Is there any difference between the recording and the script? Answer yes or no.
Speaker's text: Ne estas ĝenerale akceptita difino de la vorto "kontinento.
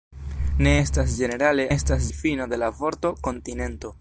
yes